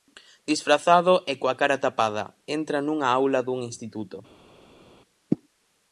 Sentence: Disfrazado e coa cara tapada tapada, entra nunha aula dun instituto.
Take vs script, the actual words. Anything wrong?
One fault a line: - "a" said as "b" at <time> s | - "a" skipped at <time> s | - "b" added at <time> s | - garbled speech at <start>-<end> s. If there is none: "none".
- "tapada" skipped at 2.2 s